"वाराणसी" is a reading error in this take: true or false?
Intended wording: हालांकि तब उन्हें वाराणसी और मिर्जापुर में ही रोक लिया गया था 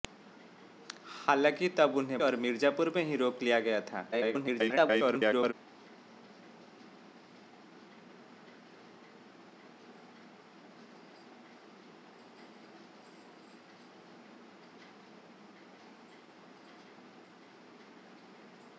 true